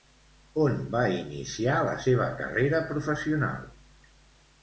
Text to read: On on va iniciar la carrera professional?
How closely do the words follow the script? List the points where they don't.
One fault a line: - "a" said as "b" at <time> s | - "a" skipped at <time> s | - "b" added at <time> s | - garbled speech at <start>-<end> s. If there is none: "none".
- "on" skipped at 0.8 s
- "seva" added at 2.0 s